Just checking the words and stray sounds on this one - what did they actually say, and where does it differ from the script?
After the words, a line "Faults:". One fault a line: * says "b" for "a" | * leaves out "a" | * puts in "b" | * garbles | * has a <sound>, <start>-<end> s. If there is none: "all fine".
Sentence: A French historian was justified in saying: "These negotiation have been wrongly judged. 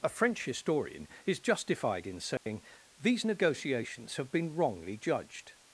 A French historian is justified in saying: "These negotiations have been wrongly judged.
Faults:
* says "is" for "was"
* has a dropout, 2.4-2.5 s
* says "negotiations" for "negotiation"